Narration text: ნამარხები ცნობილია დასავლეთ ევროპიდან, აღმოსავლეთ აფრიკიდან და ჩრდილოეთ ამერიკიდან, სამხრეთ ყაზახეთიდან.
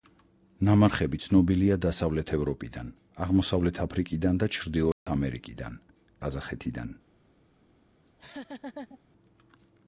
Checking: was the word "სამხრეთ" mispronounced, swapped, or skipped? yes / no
yes